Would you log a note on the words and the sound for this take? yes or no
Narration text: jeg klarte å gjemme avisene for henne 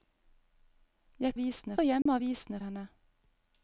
yes